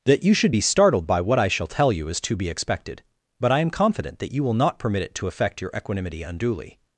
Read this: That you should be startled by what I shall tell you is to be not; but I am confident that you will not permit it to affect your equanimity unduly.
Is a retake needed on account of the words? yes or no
yes